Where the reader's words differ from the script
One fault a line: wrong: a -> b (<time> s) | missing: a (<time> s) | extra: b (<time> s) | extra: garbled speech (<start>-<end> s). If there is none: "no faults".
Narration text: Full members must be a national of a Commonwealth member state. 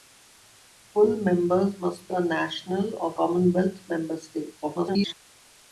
missing: be (2.1 s)
missing: a (3.2 s)
extra: garbled speech (4.6-5.1 s)